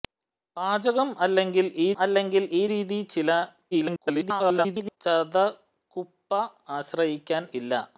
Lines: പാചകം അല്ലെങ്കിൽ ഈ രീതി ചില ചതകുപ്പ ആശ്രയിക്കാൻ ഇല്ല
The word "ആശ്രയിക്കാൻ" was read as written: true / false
true